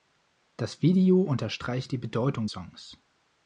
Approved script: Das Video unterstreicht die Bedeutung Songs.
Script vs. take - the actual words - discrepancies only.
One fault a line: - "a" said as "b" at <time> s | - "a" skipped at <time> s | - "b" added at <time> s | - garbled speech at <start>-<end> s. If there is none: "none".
none